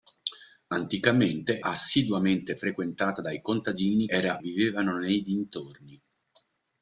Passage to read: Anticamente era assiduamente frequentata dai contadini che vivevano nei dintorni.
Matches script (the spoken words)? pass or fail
fail